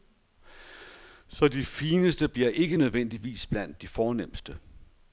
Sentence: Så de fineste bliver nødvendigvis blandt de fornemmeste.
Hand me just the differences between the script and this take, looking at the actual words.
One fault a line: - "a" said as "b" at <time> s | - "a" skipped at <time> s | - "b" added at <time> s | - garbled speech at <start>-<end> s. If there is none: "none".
- "ikke" added at 2.5 s